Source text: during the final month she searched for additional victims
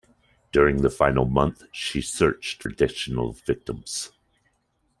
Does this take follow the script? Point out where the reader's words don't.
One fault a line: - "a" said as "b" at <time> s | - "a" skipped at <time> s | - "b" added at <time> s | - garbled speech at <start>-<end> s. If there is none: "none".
- "for" skipped at 2.6 s